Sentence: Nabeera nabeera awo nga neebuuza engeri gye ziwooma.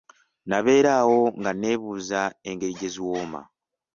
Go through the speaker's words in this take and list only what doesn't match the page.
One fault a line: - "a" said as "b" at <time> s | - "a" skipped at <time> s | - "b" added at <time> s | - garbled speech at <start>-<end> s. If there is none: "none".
- "nabeera" skipped at 0.9 s